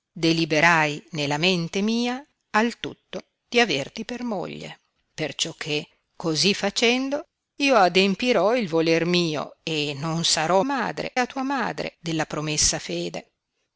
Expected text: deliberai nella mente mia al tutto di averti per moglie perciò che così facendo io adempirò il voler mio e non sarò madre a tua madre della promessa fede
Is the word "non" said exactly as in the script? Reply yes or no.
yes